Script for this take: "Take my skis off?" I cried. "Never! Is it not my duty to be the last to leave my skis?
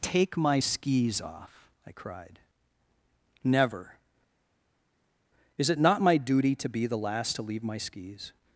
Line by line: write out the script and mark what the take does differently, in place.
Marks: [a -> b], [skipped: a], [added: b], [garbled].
"Take my skis off?" I cried. "Never! Is it not my duty to be the last to leave my skis?